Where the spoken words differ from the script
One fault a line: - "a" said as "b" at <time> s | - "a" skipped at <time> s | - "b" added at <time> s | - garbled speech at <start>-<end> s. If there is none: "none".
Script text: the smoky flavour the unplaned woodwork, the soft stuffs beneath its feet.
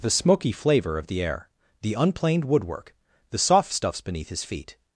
- "of" added at 1.0 s
- "air the" added at 1.2 s
- "its" said as "his" at 4.3 s